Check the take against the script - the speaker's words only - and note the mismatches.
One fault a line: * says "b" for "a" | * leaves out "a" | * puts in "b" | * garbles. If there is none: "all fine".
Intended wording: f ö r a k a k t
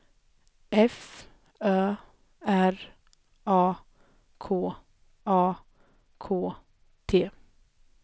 all fine